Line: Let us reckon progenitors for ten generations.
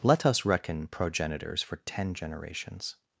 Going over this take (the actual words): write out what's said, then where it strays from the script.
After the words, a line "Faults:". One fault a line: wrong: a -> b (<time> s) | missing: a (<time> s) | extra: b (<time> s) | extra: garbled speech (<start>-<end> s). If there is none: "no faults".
Let us reckon progenitors for ten generations.
Faults:
no faults